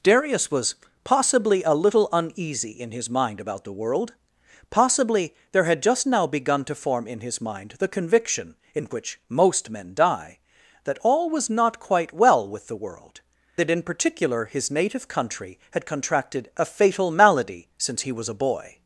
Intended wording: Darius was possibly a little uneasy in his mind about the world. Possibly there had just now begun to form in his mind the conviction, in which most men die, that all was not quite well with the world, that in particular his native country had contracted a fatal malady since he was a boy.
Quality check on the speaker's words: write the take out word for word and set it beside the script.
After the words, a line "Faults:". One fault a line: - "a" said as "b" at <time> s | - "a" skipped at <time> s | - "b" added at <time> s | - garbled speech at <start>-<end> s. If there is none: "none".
Darius was possibly a little uneasy in his mind about the world. Possibly there had just now begun to form in his mind the conviction, in which most men die, that all was not quite well with the world, that in particular his native country had contracted a fatal malady since he was a boy.
Faults:
none